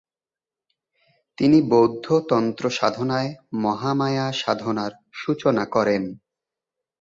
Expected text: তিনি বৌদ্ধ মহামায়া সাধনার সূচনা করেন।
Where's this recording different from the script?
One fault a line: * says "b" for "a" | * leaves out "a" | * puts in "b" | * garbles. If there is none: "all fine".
* puts in "তন্ত্র সাধনায়"